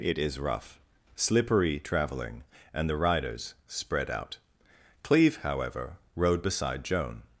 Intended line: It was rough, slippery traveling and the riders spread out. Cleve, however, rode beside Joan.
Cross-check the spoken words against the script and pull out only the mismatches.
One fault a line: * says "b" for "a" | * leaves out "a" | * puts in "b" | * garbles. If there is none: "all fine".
* says "is" for "was"